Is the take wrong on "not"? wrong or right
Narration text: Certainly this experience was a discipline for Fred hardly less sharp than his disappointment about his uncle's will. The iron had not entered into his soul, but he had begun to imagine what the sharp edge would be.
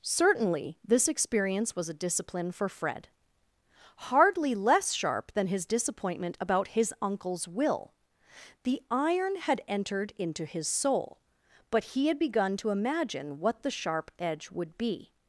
wrong